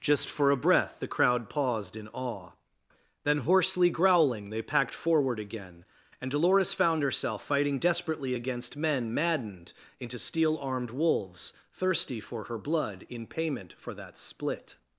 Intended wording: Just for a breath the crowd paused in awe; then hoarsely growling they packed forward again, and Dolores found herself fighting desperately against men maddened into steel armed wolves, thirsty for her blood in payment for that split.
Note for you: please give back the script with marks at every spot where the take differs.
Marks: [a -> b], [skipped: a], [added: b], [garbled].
Just for a breath the crowd paused in awe; then hoarsely growling they packed forward again, and Dolores found herself fighting desperately against men maddened into steel armed wolves, thirsty for her blood in payment for that split.